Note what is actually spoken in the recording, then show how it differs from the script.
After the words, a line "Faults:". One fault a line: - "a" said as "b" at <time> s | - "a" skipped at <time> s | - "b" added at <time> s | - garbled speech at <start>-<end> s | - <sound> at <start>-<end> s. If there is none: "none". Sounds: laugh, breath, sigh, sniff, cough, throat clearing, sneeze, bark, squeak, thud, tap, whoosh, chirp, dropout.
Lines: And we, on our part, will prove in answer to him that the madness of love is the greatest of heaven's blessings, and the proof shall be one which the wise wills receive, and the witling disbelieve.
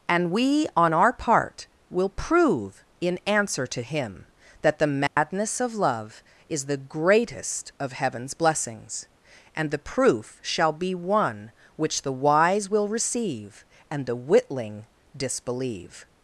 And we, on our part, will prove in answer to him that the madness of love is the greatest of heaven's blessings, and the proof shall be one which the wise will receive, and the witling disbelieve.
Faults:
- dropout at 5.1-5.2 s
- "wills" said as "will" at 12.7 s